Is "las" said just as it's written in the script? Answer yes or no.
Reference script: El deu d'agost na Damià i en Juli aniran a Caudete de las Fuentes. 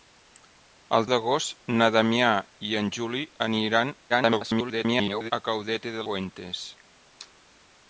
no